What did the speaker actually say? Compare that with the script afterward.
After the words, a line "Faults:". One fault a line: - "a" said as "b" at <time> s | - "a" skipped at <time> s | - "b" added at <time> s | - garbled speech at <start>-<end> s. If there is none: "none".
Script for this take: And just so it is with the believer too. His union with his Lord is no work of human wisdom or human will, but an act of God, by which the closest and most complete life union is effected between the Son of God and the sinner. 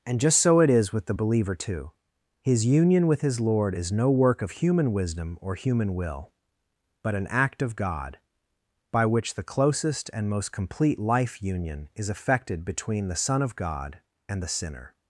And just so it is with the believer too. His union with his Lord is no work of human wisdom or human will, but an act of God, by which the closest and most complete life union is effected between the Son of God and the sinner.
Faults:
none